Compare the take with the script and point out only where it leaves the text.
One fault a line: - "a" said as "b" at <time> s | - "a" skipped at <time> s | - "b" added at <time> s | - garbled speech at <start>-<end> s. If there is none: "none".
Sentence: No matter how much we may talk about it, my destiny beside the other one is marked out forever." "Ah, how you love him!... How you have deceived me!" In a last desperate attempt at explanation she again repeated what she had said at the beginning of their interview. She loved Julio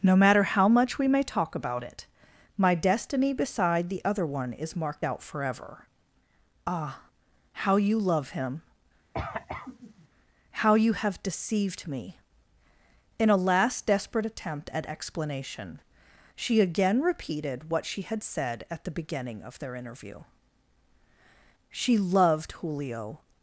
none